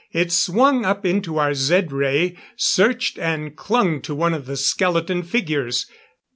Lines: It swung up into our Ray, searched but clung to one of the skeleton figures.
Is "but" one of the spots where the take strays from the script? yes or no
yes